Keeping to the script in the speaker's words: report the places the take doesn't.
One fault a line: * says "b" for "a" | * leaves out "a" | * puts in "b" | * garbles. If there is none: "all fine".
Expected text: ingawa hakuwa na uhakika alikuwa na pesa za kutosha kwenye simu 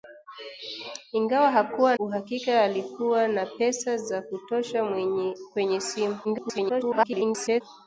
* leaves out "na"
* garbles